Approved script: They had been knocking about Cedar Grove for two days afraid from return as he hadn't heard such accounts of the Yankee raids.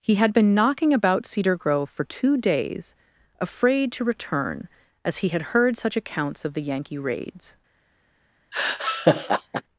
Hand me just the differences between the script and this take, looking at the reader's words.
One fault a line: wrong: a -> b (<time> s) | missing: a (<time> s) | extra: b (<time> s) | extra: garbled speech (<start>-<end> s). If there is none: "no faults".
wrong: They -> He (0.0 s)
wrong: from -> to (3.9 s)
wrong: hadn't -> had (5.3 s)